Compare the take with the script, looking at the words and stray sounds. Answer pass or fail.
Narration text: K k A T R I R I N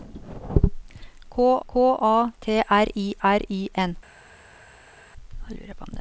pass